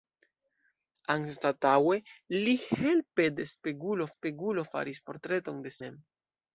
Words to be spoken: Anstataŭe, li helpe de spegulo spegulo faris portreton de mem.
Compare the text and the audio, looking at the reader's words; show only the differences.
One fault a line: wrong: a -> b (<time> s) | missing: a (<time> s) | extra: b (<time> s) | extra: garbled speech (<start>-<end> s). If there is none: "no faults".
no faults